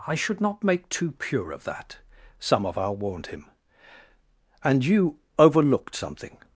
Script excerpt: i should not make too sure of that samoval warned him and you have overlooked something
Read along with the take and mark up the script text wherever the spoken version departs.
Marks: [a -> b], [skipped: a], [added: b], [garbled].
i should not make too [sure -> pure] of that samoval warned him and you [skipped: have] overlooked something